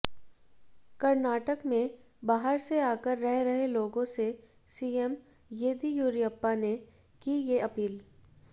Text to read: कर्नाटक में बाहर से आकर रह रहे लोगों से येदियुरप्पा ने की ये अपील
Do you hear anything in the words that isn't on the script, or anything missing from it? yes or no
yes